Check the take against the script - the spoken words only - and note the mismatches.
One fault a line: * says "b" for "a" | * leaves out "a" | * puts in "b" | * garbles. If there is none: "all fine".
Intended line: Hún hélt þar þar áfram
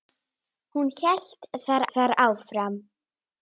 all fine